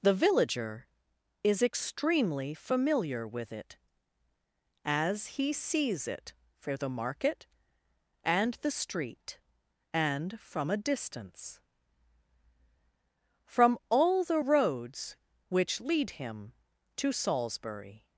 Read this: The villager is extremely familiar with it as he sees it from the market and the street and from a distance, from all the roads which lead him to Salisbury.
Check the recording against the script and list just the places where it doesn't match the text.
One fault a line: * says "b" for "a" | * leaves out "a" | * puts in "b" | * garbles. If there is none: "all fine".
* says "for" for "from"